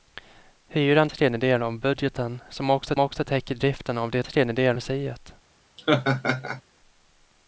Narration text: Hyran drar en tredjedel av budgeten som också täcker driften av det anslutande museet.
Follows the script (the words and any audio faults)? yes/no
no